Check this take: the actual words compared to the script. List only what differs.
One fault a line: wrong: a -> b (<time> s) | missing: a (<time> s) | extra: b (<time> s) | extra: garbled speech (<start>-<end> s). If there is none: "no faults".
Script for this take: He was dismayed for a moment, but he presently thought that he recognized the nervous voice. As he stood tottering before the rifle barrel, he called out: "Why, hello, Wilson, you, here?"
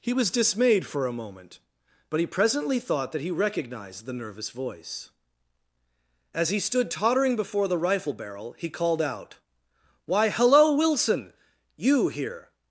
no faults